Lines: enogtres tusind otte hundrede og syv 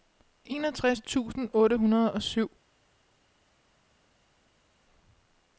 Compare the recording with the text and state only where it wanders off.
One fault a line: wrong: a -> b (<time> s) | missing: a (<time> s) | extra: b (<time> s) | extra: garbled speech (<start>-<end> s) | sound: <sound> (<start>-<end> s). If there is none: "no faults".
no faults